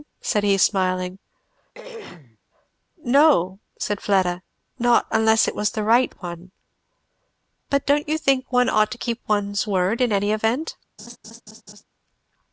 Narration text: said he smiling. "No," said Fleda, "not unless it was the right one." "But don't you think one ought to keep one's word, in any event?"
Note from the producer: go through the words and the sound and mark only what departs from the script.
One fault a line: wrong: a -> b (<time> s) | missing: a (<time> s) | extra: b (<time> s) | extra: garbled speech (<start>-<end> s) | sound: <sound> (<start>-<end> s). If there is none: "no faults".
sound: throat clearing (1.7-2.4 s)
sound: laugh (11.0-11.8 s)